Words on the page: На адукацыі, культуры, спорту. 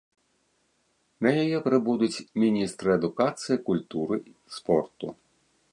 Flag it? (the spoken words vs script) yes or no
yes